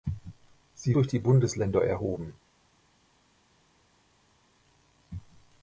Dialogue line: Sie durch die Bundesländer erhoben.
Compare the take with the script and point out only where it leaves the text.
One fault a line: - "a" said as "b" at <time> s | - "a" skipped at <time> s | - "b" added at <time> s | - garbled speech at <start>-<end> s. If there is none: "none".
none